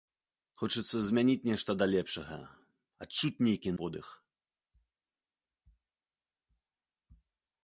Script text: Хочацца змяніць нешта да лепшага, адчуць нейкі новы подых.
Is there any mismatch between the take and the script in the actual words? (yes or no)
yes